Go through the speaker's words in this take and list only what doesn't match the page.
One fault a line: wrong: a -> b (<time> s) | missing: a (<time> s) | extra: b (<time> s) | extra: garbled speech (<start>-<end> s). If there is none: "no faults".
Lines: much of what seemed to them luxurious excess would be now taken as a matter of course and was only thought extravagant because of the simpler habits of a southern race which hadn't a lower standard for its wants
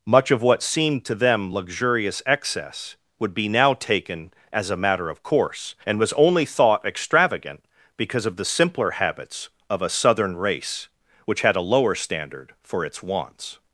wrong: hadn't -> had (11.4 s)